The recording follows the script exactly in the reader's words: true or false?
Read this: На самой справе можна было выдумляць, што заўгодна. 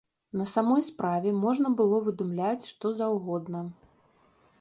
true